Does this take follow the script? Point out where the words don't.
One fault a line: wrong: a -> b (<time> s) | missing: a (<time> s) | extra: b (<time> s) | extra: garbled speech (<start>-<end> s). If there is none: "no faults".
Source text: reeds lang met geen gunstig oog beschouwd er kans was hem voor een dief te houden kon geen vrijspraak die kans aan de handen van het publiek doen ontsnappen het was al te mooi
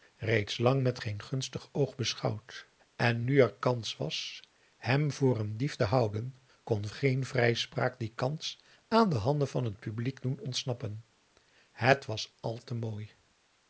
extra: en nu (3.0 s)